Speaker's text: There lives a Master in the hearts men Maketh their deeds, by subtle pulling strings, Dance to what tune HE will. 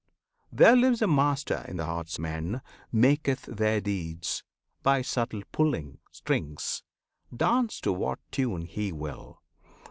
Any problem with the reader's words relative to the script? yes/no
no